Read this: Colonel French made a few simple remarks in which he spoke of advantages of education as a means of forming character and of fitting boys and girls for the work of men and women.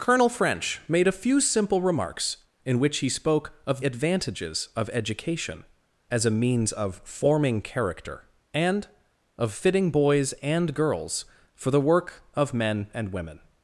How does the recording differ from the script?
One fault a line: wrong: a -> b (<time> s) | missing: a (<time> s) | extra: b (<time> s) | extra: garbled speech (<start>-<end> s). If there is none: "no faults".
no faults